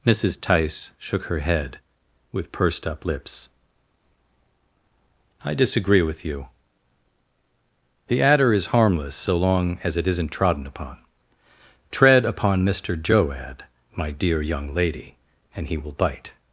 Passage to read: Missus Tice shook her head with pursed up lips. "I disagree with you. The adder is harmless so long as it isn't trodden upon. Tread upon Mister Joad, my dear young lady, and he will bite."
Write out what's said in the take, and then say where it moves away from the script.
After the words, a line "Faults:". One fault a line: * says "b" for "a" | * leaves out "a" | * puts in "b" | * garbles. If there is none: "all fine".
Missus Tice shook her head with pursed up lips. "I disagree with you. The adder is harmless so long as it isn't trodden upon. Tread upon Mister Joad, my dear young lady, and he will bite."
Faults:
all fine